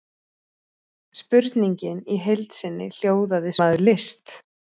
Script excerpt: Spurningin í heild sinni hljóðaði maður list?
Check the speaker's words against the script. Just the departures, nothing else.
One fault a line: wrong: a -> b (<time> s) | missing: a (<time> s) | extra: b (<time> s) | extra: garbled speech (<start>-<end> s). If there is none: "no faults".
no faults